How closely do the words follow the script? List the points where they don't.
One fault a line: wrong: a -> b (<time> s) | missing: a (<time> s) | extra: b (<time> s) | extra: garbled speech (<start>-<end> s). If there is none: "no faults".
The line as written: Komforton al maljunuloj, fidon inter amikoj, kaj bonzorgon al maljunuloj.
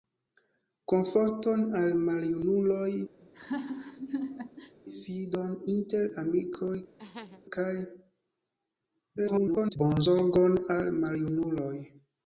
extra: garbled speech (9.2-9.8 s)